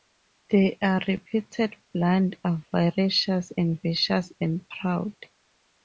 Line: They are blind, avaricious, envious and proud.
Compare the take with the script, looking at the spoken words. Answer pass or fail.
fail